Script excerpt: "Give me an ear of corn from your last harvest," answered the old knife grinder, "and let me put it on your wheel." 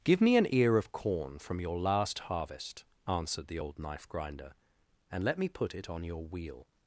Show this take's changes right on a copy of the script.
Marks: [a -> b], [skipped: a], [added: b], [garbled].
"Give me an ear of corn from your last harvest," answered the old knife grinder, "and let me put it on your wheel."